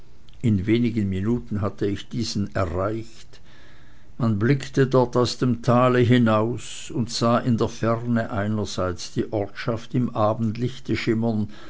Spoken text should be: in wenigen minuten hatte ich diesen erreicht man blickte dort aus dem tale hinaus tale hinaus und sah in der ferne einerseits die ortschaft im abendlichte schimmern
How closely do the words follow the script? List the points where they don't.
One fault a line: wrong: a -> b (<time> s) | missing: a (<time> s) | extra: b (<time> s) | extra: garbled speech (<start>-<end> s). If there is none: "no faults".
missing: tale hinaus (6.9 s)